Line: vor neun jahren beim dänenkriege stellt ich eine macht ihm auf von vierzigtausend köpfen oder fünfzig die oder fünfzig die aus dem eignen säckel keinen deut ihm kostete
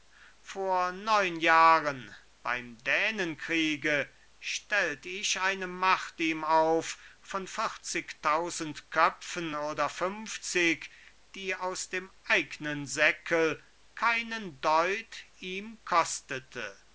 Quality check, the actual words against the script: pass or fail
fail